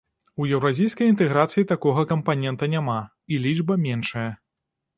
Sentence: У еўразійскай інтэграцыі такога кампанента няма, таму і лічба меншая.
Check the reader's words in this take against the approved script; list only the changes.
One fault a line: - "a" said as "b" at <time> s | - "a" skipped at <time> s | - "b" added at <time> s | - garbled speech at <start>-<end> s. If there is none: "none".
- "таму" skipped at 3.0 s